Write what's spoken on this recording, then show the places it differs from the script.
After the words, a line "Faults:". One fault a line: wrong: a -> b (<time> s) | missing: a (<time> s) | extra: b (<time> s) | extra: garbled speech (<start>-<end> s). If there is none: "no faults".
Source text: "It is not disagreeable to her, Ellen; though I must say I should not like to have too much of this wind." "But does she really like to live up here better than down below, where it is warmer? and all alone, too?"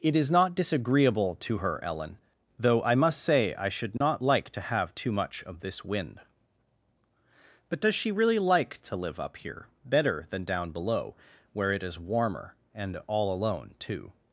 "It is not disagreeable to her, Ellen; though I must say I should not like to have too much of this wind." "But does she really like to live up here better than down below, where it is warmer? and all alone, too?"
Faults:
no faults